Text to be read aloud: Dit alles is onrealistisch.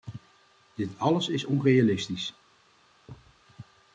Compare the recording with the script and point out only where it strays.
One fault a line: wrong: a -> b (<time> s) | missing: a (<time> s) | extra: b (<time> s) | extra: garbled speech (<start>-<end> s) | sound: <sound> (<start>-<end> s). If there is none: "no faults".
sound: thud (3.1-3.4 s)